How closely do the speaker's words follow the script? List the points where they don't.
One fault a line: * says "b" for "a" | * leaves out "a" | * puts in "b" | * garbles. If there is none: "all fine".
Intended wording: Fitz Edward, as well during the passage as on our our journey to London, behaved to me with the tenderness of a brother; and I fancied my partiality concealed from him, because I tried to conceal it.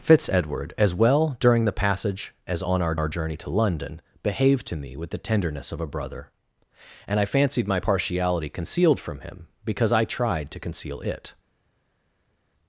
all fine